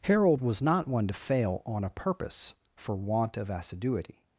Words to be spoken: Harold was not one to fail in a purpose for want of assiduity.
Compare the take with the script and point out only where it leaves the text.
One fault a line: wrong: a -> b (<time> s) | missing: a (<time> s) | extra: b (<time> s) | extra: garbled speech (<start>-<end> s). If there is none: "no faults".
wrong: in -> on (1.7 s)